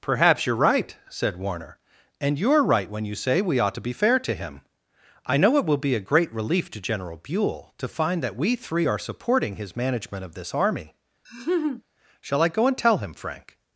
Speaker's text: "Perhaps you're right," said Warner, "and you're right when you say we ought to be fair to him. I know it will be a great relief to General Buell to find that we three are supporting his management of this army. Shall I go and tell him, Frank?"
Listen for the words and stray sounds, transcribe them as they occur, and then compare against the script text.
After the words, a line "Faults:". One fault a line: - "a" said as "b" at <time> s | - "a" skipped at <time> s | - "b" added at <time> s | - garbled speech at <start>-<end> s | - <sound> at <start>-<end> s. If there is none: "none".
"Perhaps you're right," said Warner, "and you're right when you say we ought to be fair to him. I know it will be a great relief to General Buell to find that we three are supporting his management of this army. Shall I go and tell him, Frank?"
Faults:
- laugh at 11.2-11.8 s